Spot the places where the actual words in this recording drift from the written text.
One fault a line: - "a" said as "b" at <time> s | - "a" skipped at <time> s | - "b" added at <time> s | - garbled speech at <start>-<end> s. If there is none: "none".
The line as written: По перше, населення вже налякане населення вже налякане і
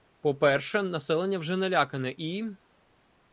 - "населення вже налякане" skipped at 2.1 s